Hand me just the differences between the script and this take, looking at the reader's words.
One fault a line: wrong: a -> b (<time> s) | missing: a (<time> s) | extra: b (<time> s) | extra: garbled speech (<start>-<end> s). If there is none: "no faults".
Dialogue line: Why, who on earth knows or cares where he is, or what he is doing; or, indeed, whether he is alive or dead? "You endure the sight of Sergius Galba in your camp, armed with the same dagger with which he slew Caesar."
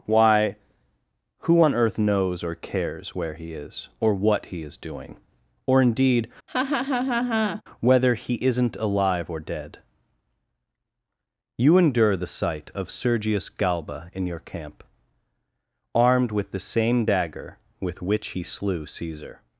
wrong: is -> isn't (8.3 s)